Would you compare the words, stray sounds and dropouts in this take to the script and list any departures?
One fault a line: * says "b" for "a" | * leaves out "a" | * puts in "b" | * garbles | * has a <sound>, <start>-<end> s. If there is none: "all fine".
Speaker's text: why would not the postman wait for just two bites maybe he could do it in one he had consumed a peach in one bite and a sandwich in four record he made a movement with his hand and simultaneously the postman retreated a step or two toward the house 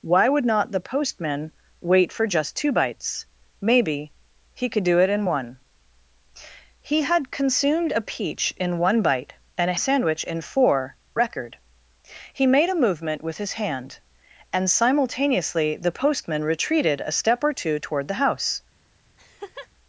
* has a laugh, 19.2-19.7 s